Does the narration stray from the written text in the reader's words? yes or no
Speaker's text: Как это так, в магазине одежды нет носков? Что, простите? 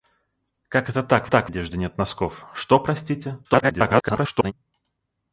yes